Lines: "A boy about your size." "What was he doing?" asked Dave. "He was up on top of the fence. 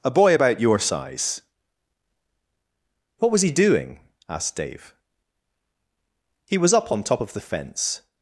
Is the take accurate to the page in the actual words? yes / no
yes